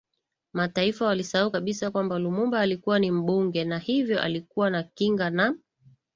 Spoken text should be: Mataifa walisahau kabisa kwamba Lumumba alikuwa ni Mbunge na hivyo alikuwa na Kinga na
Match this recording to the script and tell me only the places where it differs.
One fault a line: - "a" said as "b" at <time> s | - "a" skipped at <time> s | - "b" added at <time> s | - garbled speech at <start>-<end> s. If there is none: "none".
none